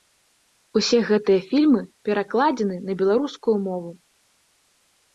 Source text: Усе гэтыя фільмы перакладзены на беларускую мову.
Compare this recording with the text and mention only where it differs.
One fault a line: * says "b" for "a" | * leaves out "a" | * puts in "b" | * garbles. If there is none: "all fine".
all fine